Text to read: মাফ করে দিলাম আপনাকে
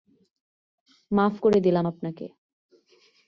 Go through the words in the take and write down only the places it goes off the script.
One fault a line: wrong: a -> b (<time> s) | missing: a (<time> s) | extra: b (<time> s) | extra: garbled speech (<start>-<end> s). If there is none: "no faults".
no faults